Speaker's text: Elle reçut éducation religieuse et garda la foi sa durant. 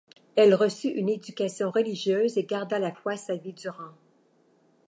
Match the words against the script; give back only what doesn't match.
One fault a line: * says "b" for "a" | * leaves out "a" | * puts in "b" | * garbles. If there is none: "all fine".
* puts in "une"
* puts in "vie"